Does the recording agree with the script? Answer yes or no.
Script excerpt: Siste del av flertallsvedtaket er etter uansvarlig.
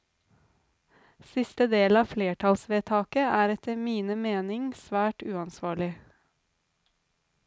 no